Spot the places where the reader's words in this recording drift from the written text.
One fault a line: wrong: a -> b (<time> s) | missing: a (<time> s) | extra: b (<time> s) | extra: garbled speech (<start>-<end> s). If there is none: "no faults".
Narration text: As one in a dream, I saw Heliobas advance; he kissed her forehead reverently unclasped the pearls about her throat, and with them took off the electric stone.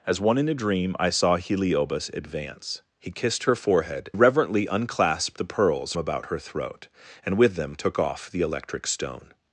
no faults